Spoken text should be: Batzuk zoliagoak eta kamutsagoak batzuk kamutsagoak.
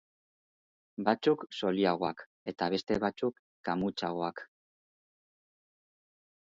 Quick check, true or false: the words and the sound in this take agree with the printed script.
false